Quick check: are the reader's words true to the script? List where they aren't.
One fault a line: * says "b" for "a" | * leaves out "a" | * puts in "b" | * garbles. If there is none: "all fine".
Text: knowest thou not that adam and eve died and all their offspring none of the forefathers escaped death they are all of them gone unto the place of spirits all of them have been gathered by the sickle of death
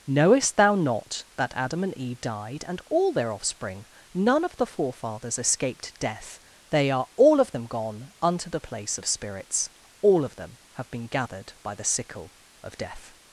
all fine